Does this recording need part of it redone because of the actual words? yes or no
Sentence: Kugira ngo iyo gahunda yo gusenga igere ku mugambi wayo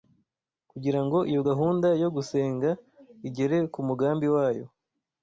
no